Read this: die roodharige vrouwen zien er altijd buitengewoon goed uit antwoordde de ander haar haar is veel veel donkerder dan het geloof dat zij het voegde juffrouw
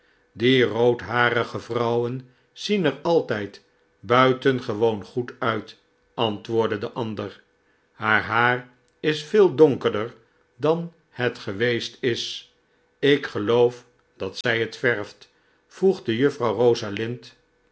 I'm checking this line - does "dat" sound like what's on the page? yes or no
yes